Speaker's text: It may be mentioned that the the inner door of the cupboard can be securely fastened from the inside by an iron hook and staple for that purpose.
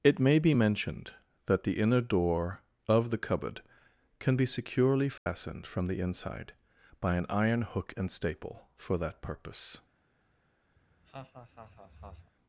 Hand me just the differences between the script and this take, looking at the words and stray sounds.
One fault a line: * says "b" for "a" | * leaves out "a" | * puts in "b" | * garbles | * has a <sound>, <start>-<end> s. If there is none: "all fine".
* leaves out "the"
* has a dropout, 5.2-5.3 s
* has a laugh, 10.8-12.3 s